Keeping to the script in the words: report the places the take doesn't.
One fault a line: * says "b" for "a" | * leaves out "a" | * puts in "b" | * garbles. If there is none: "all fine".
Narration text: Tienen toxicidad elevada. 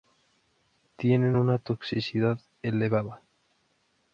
* puts in "una"